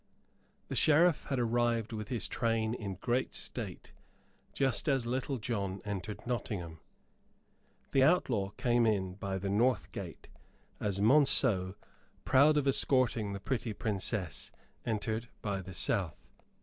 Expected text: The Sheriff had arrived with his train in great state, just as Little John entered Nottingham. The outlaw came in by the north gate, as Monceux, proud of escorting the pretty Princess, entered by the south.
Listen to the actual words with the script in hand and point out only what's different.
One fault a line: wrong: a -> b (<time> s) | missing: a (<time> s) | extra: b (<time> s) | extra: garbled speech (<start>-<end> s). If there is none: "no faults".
no faults